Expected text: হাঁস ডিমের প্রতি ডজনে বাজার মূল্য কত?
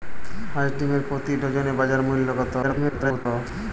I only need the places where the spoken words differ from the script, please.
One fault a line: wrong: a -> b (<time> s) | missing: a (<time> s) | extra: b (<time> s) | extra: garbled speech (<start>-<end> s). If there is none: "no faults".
extra: garbled speech (2.6-3.3 s)